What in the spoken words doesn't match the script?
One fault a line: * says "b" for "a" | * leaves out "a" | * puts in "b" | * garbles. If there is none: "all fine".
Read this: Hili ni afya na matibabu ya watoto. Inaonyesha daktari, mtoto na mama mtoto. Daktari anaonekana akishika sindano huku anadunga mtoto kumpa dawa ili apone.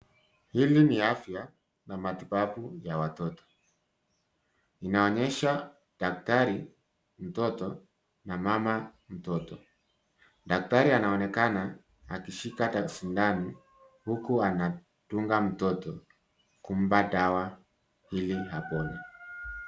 all fine